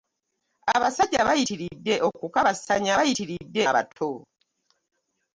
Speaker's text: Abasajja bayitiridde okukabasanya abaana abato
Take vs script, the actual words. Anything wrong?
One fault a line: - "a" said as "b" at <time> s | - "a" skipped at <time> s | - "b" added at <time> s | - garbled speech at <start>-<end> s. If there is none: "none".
- "abaana" said as "bayitiridde" at 3.0 s